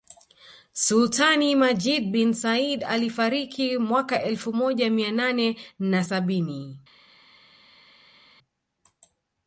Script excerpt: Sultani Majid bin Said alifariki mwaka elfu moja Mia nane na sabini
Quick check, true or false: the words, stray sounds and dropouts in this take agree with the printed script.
true